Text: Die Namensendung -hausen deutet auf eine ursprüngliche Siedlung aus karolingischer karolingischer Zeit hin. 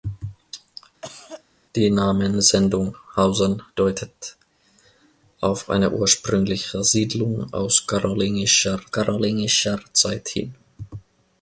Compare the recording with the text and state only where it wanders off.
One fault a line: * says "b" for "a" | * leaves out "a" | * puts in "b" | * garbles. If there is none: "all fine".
all fine